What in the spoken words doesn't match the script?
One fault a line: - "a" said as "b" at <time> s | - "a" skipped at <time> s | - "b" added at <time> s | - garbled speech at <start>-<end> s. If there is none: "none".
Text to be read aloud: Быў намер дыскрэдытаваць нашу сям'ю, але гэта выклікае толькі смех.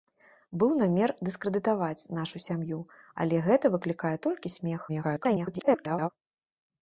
- garbled speech at 4.9-6.1 s